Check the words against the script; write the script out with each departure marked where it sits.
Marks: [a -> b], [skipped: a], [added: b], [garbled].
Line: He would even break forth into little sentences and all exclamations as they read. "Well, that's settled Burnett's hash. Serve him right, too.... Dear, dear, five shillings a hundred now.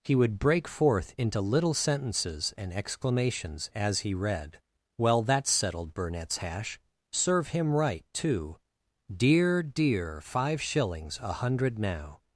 He would [skipped: even] break forth into little sentences and [skipped: all] exclamations as [they -> he] read. "Well, that's settled Burnett's hash. Serve him right, too.... Dear, dear, five shillings a hundred now.